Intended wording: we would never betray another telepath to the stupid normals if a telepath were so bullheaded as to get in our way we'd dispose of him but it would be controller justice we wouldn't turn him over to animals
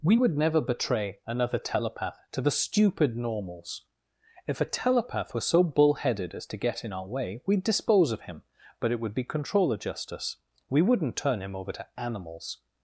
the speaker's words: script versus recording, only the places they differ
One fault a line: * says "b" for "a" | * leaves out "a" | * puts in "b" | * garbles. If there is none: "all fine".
all fine